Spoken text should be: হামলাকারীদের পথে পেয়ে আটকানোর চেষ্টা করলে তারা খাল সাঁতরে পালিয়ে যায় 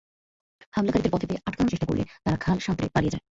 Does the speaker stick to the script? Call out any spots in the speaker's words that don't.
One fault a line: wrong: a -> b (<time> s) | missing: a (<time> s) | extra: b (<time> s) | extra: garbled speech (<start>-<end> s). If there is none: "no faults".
no faults